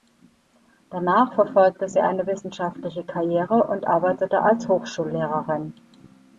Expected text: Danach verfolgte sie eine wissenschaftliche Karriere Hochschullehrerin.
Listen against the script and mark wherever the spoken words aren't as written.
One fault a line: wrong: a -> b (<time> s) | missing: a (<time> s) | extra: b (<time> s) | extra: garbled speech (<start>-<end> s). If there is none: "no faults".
extra: und arbeitete als (3.6 s)